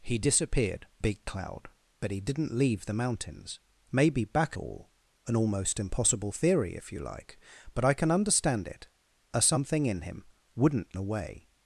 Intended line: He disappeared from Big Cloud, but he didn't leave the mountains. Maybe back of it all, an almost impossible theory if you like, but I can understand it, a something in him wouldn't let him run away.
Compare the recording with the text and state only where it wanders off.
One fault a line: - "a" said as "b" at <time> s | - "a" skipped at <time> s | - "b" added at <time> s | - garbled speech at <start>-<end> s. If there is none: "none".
- "from" skipped at 0.9 s
- "of it" skipped at 4.6 s
- "let him run" skipped at 11.0 s